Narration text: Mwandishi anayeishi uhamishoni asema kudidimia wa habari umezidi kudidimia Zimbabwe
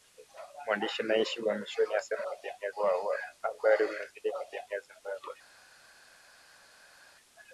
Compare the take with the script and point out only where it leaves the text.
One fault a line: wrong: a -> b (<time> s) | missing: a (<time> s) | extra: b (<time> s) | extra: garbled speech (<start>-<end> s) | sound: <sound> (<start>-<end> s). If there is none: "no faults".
no faults